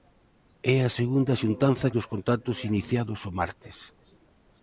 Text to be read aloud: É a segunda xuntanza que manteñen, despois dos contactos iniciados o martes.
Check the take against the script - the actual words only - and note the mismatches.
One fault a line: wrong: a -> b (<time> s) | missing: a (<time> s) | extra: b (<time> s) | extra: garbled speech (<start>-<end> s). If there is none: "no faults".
missing: que manteñen despois (1.9 s)